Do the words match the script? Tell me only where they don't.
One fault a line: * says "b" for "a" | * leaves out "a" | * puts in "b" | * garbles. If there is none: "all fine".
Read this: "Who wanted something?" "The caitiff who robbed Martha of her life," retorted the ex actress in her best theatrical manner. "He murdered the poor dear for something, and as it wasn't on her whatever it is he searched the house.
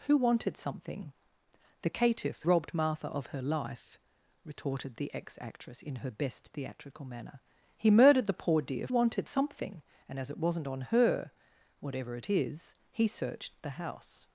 * leaves out "who"
* says "wanted" for "for"